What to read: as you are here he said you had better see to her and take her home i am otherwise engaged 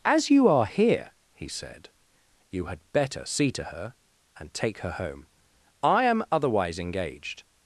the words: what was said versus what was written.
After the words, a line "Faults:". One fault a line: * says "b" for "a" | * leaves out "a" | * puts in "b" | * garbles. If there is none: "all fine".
as you are here he said you had better see to her and take her home i am otherwise engaged
Faults:
all fine